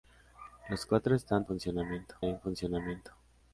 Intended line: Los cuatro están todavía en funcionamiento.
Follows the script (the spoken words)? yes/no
no